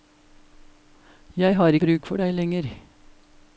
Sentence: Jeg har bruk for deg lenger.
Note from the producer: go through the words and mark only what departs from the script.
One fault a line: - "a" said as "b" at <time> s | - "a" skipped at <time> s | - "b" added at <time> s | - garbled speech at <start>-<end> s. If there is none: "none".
none